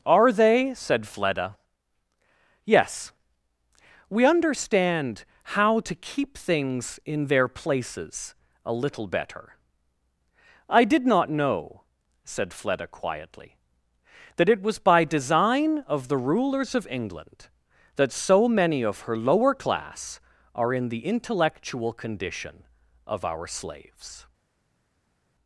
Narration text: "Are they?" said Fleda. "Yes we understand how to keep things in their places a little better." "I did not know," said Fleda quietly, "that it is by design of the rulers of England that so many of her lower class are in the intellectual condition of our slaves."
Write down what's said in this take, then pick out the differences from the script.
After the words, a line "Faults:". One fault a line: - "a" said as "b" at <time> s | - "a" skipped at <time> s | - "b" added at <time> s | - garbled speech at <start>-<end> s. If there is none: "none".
"Are they?" said Fleda. "Yes we understand how to keep things in their places a little better." "I did not know," said Fleda quietly, "that it was by design of the rulers of England that so many of her lower class are in the intellectual condition of our slaves."
Faults:
- "is" said as "was" at 14.6 s